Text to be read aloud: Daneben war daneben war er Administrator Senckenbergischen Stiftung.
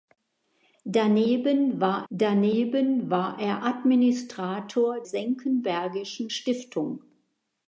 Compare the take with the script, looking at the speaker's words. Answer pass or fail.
pass